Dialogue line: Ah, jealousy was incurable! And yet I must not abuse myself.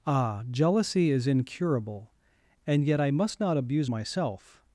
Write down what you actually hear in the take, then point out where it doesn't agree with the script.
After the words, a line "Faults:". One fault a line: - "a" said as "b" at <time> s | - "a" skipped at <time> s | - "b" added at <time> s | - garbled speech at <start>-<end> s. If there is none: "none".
Ah, jealousy is incurable! And yet I must not abuse myself.
Faults:
- "was" said as "is" at 1.1 s